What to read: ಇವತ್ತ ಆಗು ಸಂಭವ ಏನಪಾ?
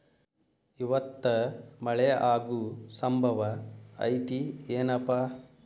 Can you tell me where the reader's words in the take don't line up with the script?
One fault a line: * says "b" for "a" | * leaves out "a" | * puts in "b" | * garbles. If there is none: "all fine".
* puts in "ಮಳೆ"
* puts in "ಐತಿ"